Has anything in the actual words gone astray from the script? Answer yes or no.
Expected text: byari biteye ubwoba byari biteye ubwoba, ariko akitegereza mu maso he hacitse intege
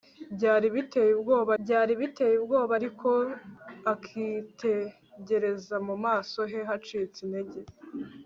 no